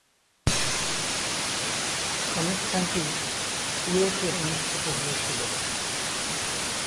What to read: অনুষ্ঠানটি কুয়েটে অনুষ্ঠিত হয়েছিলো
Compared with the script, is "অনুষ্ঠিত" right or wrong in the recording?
right